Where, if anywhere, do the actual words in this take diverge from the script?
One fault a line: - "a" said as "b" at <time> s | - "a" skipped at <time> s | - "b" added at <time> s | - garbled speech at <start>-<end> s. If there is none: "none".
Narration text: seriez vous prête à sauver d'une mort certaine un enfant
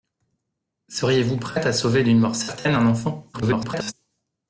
- garbled speech at 3.3-3.9 s